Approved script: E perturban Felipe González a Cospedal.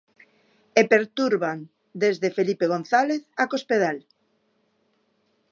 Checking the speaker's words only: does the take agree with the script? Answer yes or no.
no